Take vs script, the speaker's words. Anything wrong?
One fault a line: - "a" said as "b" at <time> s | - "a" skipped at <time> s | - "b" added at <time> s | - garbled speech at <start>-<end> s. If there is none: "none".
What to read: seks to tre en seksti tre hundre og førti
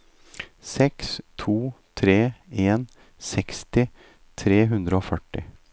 none